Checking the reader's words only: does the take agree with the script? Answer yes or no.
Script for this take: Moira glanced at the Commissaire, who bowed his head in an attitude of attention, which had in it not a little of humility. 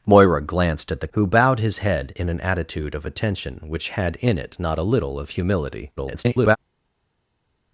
no